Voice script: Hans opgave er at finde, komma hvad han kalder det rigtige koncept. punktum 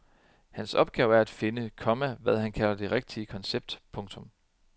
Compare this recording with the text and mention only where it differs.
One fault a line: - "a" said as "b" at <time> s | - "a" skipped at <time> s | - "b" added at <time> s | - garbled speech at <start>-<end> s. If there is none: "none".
none